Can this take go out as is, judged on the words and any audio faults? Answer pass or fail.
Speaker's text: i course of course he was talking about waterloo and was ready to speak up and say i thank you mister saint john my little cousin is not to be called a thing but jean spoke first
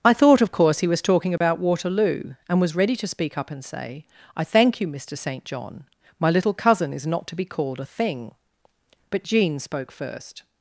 fail